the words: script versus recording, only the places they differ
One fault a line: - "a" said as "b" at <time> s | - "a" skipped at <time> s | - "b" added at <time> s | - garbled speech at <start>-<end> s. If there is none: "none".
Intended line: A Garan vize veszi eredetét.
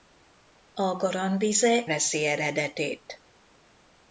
none